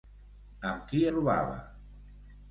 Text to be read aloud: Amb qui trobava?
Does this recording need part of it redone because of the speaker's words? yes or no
no